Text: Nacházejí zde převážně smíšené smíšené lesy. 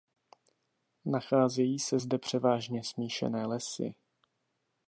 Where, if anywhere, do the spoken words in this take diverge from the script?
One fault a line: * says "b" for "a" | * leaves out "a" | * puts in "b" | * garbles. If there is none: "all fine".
* puts in "se"
* leaves out "smíšené"